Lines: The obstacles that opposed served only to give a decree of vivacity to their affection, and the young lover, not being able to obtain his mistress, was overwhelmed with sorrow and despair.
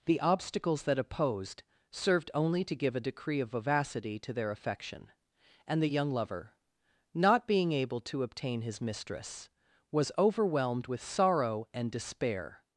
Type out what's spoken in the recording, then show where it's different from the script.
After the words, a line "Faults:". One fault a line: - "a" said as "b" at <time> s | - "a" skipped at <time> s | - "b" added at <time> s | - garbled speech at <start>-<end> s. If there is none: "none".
The obstacles that opposed served only to give a decree of vivacity to their affection, and the young lover, not being able to obtain his mistress, was overwhelmed with sorrow and despair.
Faults:
none